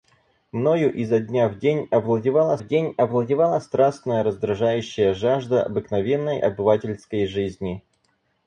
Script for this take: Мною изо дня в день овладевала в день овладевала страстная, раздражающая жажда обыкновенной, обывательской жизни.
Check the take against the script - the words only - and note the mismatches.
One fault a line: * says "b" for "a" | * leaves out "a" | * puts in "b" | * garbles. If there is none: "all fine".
all fine